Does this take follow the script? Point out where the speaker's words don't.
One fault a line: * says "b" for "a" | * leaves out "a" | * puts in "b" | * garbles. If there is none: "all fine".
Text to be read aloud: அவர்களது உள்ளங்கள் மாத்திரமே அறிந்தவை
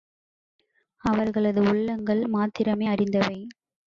all fine